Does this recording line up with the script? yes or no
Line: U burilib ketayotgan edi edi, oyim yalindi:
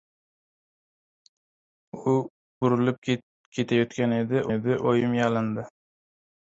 yes